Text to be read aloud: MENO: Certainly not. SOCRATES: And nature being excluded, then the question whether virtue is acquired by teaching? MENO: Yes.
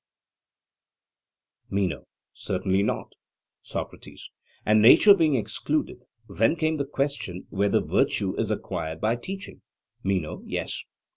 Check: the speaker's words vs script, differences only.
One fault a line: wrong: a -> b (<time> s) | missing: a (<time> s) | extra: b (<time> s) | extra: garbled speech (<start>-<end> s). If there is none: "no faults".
extra: came (6.5 s)